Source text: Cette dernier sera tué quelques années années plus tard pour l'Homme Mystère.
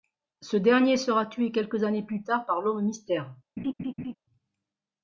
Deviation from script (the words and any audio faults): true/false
true